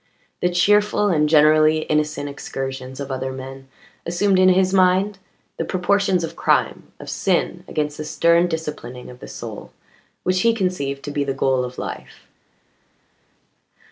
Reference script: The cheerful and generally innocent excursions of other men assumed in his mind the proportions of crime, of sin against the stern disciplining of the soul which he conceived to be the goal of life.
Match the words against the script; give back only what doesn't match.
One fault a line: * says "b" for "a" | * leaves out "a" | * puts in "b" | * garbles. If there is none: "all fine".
all fine